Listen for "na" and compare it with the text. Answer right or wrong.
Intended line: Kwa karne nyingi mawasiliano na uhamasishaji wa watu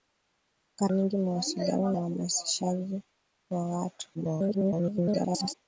wrong